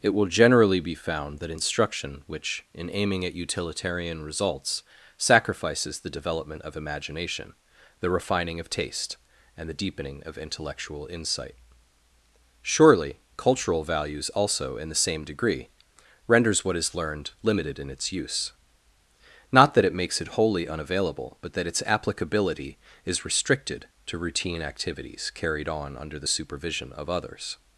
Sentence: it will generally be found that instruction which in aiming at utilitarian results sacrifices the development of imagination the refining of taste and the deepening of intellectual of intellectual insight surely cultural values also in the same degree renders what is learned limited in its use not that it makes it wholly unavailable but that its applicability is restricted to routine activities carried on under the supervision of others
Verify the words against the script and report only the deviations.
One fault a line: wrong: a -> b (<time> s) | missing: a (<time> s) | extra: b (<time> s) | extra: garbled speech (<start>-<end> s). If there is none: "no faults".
missing: of intellectual (11.1 s)